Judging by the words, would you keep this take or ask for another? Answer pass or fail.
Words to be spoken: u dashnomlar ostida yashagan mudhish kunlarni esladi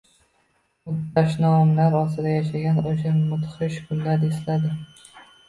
fail